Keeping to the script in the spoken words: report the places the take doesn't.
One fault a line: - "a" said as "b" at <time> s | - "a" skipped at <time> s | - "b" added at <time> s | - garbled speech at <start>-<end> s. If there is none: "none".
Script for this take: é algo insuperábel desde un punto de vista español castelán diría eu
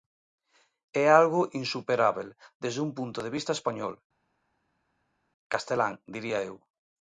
none